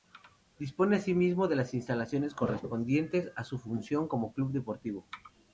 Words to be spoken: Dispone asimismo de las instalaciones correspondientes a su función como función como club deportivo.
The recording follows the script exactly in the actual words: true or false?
false